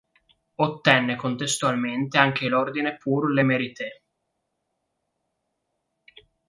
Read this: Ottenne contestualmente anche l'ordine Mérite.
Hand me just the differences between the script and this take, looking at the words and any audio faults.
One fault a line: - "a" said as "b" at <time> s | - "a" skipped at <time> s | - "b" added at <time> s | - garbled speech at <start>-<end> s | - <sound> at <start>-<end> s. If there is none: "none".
- "Pour le" added at 3.0 s